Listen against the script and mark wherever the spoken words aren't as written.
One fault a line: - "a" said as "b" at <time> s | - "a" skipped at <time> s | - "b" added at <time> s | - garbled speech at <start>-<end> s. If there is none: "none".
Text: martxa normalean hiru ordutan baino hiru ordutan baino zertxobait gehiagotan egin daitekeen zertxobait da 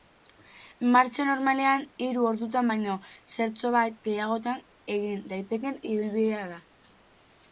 - "hiru ordutan baino" skipped at 2.9 s
- "zertxobait" said as "ibilbidea" at 5.9 s